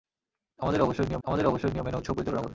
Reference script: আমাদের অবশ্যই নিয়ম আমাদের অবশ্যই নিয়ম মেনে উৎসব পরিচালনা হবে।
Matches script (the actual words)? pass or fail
pass